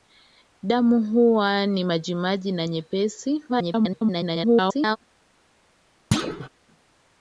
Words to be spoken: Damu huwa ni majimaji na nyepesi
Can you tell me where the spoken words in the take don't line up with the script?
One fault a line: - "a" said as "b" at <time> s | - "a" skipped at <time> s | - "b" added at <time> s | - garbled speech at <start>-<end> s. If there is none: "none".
- garbled speech at 3.5-5.0 s